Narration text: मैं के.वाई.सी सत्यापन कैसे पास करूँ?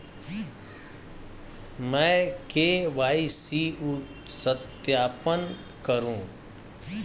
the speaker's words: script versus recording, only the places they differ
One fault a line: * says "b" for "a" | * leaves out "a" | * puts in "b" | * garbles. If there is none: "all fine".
* leaves out "कैसे पास"